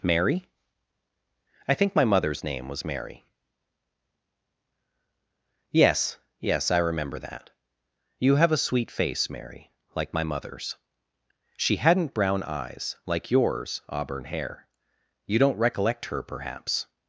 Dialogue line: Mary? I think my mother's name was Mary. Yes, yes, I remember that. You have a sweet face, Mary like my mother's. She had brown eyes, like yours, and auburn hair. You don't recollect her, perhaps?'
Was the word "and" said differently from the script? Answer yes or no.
yes